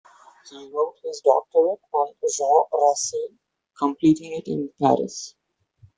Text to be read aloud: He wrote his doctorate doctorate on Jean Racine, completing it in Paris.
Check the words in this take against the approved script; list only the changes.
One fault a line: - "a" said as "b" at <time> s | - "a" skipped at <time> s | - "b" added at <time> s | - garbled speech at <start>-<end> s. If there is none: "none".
- "doctorate" skipped at 1.8 s